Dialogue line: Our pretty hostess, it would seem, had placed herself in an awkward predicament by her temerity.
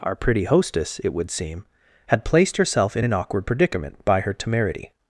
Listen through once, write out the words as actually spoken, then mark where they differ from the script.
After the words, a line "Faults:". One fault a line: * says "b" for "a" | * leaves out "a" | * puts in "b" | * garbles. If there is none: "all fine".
Our pretty hostess, it would seem, had placed herself in an awkward predicament by her temerity.
Faults:
all fine